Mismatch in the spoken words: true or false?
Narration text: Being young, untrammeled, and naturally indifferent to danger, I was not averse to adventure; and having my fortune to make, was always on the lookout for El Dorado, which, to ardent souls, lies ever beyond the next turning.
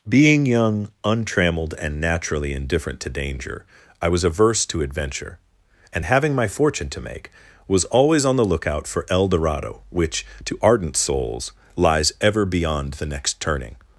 true